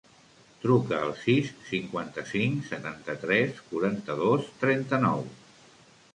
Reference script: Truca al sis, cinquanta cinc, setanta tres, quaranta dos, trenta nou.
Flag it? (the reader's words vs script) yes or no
no